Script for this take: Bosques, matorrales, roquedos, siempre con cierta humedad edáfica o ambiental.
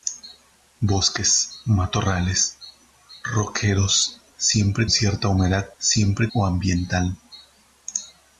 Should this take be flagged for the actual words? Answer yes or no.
yes